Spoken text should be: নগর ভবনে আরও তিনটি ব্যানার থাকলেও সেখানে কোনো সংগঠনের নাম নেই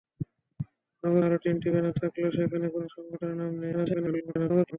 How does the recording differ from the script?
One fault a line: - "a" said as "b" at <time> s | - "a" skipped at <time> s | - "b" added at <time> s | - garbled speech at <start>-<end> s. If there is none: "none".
- "ভবনে" skipped at 1.2 s
- garbled speech at 3.7-4.8 s